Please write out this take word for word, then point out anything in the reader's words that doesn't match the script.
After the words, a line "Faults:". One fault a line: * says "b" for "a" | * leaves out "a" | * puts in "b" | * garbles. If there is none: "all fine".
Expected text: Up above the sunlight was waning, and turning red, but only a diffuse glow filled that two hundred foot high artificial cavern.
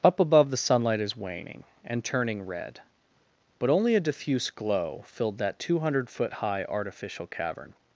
Up above the sunlight is waning, and turning red, but only a diffuse glow filled that two hundred foot high artificial cavern.
Faults:
* says "is" for "was"